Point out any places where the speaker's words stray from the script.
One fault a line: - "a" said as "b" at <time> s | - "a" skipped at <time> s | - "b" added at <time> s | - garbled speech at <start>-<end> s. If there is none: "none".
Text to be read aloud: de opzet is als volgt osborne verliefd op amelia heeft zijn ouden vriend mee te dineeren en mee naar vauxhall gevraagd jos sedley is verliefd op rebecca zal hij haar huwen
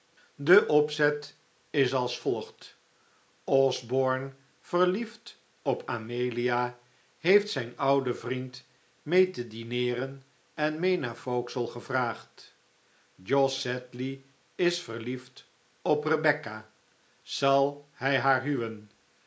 none